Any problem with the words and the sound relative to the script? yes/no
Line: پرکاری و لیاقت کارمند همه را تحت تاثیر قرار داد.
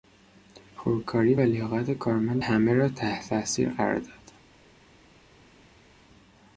no